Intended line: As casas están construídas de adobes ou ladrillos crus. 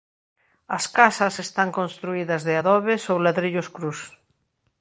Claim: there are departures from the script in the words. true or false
false